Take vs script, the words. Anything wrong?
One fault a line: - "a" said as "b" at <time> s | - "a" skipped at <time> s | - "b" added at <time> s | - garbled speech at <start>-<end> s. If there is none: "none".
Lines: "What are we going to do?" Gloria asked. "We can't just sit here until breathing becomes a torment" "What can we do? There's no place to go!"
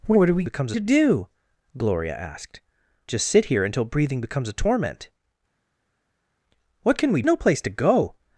- "going" said as "becomes" at 0.4 s
- "We can't" skipped at 2.6 s
- "do There's" skipped at 7.2 s